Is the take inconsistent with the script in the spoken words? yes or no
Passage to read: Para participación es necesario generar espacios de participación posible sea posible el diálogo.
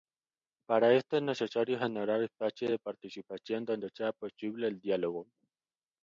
yes